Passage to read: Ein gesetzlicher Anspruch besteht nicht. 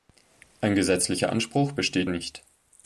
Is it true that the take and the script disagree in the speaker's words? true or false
false